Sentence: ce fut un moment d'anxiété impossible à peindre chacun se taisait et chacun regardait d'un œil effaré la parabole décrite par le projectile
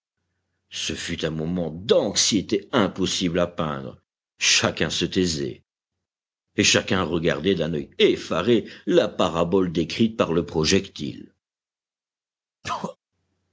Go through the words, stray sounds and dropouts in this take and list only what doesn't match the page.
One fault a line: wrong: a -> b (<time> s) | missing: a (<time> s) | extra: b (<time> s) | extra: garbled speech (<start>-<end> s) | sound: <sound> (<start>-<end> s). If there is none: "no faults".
sound: sneeze (12.6-13.0 s)